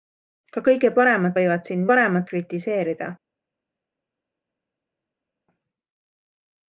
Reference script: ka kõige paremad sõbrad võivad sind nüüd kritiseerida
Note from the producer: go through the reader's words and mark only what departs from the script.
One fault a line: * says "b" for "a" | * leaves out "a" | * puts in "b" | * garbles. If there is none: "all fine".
* leaves out "sõbrad"
* says "paremad" for "nüüd"